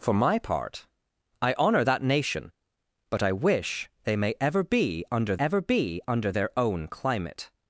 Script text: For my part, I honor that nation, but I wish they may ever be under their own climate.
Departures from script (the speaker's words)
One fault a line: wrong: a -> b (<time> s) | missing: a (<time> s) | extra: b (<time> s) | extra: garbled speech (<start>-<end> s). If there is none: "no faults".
extra: ever be under (5.4 s)